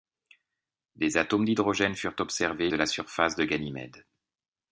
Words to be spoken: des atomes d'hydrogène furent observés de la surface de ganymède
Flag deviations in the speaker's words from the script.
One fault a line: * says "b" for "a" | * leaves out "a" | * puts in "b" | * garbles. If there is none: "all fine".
all fine